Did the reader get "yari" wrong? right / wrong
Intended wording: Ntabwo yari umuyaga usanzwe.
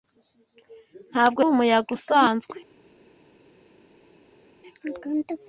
wrong